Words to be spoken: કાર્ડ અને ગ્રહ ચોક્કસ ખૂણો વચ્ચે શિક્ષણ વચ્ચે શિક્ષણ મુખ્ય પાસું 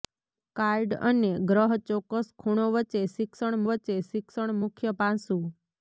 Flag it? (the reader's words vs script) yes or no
no